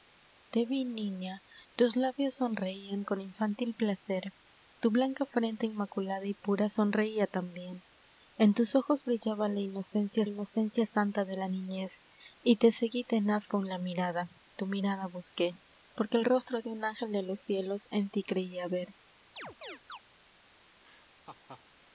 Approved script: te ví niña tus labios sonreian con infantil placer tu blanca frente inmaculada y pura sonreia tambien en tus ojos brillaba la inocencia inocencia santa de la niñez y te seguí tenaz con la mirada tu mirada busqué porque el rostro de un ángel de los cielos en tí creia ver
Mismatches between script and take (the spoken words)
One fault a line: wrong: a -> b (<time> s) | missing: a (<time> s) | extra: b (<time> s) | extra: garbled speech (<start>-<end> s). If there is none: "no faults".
no faults